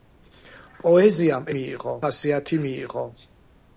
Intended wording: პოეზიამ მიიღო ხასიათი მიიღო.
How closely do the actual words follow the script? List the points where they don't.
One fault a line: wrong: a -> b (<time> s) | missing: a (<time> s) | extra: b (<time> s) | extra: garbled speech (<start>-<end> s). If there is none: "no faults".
no faults